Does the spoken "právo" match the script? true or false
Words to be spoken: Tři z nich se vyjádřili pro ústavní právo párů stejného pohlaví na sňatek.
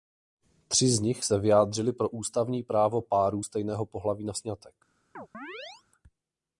true